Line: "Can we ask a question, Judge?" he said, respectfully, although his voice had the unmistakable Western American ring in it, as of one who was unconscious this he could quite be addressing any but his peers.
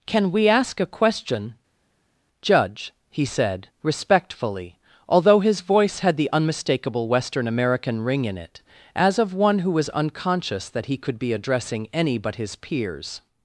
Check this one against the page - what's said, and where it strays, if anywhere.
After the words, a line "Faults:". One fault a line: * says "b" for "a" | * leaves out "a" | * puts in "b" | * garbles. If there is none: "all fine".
"Can we ask a question, Judge?" he said, respectfully, although his voice had the unmistakable Western American ring in it, as of one who was unconscious that he could be addressing any but his peers.
Faults:
* says "that" for "this"
* leaves out "quite"